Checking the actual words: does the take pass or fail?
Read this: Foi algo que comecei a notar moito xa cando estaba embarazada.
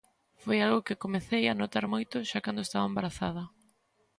pass